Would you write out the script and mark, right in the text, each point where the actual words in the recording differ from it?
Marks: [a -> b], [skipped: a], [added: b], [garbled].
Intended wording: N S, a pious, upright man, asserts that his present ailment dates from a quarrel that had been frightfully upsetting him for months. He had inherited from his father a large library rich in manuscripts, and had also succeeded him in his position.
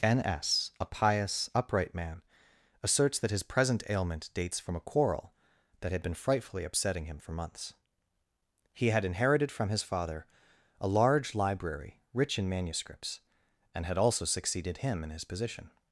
N S, a pious, upright man, asserts that his present ailment dates from a quarrel that had been frightfully upsetting him for months. He had inherited from his father a large library rich in manuscripts, and had also succeeded him in his position.